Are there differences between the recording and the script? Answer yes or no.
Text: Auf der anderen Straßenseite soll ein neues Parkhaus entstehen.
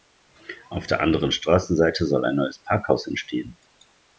no